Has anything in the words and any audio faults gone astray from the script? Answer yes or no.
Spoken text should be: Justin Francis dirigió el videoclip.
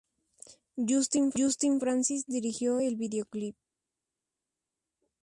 no